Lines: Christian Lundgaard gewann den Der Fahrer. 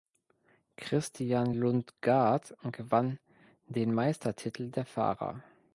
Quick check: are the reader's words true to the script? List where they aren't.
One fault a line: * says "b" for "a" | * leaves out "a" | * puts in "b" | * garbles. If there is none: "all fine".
* puts in "Meistertitel"